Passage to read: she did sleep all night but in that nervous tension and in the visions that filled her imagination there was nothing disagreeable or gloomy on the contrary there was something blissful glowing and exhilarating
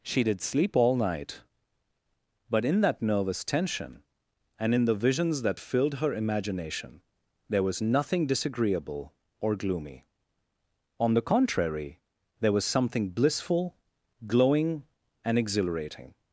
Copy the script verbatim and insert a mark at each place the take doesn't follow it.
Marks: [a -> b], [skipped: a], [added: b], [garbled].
she did sleep all night but in that nervous tension and in the visions that filled her imagination there was nothing disagreeable or gloomy on the contrary there was something blissful glowing and exhilarating